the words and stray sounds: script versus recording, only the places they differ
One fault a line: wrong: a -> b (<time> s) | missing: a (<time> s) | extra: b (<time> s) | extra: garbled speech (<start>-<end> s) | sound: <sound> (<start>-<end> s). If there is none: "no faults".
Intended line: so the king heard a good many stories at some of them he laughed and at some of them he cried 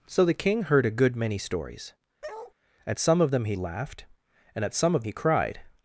sound: bark (2.2-2.5 s)
missing: them (5.0 s)